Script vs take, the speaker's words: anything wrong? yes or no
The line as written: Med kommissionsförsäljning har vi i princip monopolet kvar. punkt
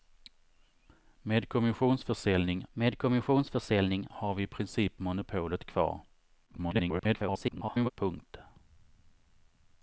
yes